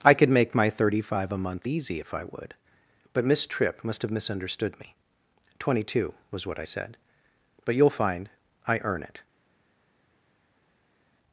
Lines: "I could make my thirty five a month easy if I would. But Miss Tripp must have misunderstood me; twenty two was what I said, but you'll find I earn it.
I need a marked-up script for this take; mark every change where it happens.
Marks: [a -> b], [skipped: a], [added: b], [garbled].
"I could make my thirty five a month easy if I would. But Miss Tripp must have misunderstood me; twenty two was what I said, but you'll find I earn it.